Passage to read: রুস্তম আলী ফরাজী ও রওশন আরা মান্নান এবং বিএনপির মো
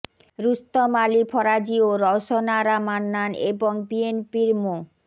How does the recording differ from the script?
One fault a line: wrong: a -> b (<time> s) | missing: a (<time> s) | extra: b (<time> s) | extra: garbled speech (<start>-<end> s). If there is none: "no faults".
no faults